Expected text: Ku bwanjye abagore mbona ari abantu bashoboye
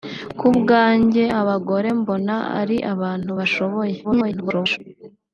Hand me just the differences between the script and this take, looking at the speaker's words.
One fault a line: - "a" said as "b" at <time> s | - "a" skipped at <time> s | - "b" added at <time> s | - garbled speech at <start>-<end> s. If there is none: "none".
- garbled speech at 4.0-4.8 s